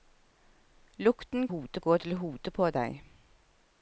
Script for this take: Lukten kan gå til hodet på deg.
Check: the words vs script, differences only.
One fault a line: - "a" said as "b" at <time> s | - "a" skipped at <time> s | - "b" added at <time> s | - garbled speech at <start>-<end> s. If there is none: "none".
- "kan" said as "hodet" at 1.5 s